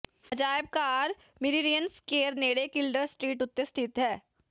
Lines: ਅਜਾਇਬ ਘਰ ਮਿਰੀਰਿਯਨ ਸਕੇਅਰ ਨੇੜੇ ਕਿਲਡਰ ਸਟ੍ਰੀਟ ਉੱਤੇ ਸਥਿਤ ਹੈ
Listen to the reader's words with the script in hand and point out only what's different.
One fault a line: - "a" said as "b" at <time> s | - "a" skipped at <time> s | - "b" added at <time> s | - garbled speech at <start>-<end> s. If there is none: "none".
none